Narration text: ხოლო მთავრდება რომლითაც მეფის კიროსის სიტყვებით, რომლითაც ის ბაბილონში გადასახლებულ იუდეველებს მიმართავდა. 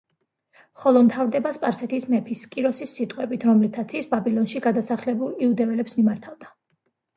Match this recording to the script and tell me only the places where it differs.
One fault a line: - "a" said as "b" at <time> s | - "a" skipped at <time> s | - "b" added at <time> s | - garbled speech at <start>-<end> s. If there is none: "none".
- "რომლითაც" said as "სპარსეთის" at 1.6 s